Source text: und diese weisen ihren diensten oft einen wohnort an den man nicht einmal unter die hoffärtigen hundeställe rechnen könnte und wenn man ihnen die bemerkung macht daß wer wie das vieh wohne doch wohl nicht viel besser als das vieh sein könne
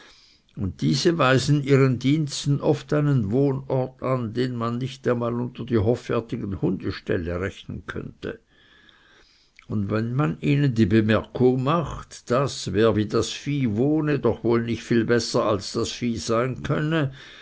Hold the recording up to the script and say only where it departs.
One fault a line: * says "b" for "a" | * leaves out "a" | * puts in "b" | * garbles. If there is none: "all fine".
all fine